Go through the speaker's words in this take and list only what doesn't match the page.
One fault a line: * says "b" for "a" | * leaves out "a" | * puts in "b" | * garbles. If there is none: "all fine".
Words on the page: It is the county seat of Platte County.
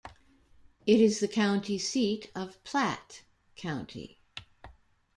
all fine